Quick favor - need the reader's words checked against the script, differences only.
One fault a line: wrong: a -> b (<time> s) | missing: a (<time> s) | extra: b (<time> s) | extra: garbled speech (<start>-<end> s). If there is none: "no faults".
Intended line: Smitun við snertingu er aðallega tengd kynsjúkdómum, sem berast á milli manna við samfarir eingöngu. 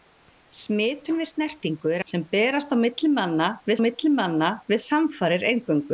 wrong: aðallega tengd kynsjúkdómum sem berast á -> sem berast á milli manna við (2.1 s)